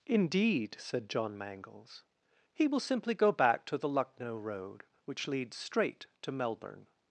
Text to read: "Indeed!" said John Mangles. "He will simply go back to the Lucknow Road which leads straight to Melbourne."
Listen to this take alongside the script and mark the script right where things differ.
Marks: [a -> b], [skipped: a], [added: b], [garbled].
"Indeed!" said John Mangles. "He will simply go back to the Lucknow Road which leads straight to Melbourne."